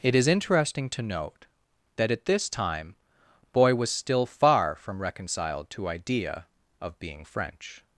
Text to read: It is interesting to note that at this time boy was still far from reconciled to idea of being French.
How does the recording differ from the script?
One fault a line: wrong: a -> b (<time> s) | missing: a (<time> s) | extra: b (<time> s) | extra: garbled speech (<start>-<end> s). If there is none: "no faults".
no faults